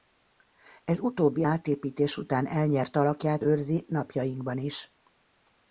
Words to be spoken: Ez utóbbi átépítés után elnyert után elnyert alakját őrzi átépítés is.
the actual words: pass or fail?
fail